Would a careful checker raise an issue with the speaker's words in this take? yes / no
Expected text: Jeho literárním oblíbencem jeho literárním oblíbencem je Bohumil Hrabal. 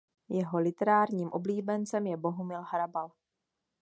yes